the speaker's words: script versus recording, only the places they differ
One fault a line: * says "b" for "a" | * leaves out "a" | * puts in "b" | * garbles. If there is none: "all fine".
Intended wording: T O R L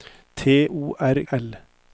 all fine